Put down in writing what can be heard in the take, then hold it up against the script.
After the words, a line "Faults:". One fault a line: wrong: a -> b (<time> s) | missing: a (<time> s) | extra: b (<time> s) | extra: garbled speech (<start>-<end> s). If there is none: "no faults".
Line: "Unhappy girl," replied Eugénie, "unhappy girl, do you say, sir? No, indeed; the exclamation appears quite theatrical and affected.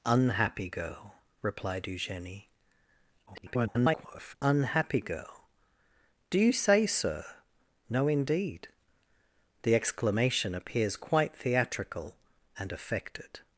"Unhappy girl," replied Eugénie, [garbled] "unhappy girl, do you say, sir? No, indeed; the exclamation appears quite theatrical and affected.
Faults:
extra: garbled speech (3.3-4.3 s)